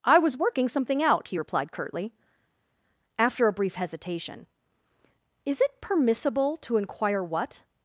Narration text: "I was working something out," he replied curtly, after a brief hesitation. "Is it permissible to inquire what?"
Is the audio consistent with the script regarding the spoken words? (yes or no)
yes